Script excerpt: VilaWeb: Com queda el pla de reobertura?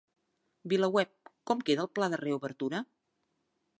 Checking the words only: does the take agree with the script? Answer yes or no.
yes